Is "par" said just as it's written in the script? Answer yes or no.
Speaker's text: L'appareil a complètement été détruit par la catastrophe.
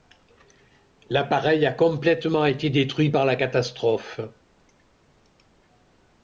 yes